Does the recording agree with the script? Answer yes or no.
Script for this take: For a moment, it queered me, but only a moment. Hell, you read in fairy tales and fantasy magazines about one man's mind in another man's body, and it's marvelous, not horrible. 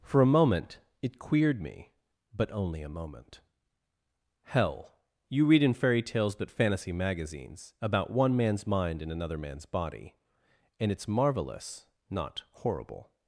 no